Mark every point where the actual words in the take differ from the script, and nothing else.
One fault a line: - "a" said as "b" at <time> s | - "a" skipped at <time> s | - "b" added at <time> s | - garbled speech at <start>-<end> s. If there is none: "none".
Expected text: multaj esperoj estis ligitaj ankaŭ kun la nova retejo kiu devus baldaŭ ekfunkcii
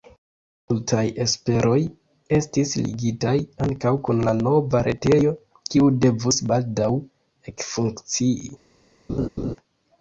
none